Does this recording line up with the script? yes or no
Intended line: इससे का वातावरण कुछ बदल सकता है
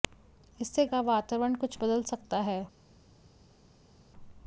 yes